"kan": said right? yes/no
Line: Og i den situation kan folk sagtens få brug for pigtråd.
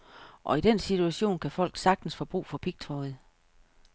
yes